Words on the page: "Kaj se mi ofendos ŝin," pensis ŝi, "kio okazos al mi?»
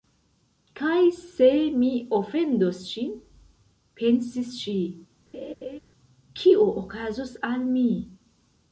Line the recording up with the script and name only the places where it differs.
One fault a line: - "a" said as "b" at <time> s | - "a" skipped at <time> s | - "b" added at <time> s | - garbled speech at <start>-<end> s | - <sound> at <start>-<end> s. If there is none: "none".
- laugh at 5.3-5.8 s